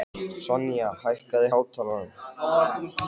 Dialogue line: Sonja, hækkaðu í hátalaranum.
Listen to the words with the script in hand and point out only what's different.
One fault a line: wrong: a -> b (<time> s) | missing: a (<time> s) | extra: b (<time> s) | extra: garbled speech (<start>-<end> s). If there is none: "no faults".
no faults